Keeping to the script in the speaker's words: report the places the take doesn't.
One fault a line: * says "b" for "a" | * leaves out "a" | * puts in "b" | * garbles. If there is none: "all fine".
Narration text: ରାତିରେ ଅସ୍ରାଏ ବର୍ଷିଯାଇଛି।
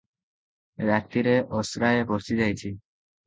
all fine